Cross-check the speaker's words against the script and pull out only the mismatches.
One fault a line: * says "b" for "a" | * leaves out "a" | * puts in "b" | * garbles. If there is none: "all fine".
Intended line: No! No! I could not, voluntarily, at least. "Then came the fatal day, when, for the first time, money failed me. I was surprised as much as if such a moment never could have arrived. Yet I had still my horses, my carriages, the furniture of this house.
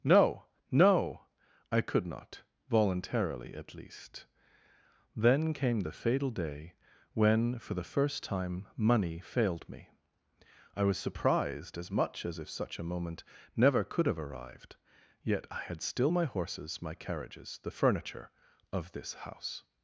all fine